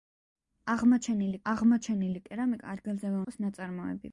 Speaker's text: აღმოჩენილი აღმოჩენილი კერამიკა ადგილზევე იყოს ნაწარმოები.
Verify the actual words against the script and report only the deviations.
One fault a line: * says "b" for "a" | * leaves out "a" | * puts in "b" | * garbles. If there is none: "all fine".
all fine